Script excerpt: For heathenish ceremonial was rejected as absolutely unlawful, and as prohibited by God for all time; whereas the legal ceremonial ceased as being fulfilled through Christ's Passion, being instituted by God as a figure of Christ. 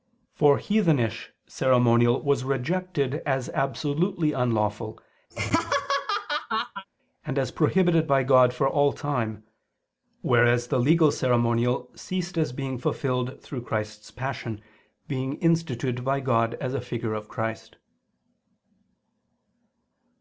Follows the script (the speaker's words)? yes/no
yes